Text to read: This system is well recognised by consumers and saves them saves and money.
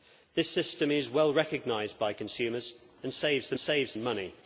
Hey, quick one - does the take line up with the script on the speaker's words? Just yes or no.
yes